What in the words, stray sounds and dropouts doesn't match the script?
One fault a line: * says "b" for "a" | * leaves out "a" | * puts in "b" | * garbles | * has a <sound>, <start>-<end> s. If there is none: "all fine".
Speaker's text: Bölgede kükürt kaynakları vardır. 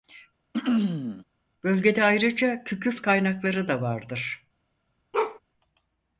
* has a throat clearing, 0.5-1.2 s
* puts in "ayrıca"
* puts in "da"
* has a bark, 5.1-5.4 s